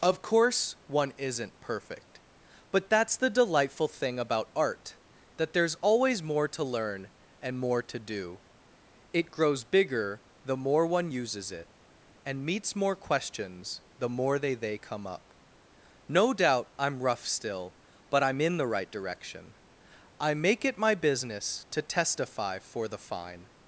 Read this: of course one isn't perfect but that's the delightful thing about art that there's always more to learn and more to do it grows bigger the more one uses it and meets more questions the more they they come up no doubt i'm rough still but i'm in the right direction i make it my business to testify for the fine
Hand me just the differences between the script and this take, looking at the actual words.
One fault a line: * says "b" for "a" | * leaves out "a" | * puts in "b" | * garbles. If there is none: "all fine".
all fine